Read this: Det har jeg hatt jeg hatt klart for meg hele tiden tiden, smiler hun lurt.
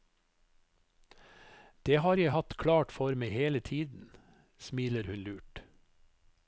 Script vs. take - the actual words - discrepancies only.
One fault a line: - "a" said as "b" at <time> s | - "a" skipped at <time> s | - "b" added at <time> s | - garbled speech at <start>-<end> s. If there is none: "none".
- "jeg hatt" skipped at 2.6 s
- "tiden" skipped at 4.1 s